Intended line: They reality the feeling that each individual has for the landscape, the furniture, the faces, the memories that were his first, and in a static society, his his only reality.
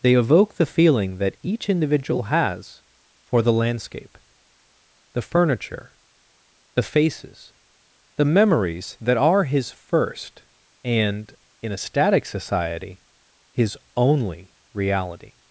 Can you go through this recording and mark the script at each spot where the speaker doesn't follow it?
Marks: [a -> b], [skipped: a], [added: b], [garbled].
They [reality -> evoke] the feeling that each individual has for the landscape, the furniture, the faces, the memories that [were -> are] his first, and in a static society, his [skipped: his] only reality.